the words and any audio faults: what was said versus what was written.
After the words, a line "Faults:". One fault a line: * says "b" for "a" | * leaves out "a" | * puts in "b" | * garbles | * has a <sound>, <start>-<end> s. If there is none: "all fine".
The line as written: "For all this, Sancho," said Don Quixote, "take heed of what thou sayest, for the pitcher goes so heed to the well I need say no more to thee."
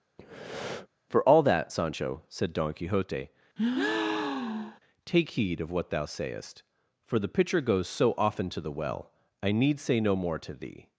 "For all that, Sancho," said Don Quixote, "take heed of what thou sayest, for the pitcher goes so often to the well I need say no more to thee."
Faults:
* has a breath, 0.2-0.9 s
* says "that" for "this"
* has a breath, 3.6-4.8 s
* says "often" for "heed"